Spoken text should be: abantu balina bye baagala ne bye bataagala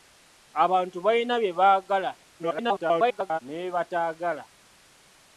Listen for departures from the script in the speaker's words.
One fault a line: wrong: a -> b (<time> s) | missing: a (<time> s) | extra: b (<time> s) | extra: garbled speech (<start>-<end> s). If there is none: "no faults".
extra: garbled speech (2.4-3.4 s)